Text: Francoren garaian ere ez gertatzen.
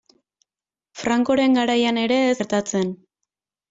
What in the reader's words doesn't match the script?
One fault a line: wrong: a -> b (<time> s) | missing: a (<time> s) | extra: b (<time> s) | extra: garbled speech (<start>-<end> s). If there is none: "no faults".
no faults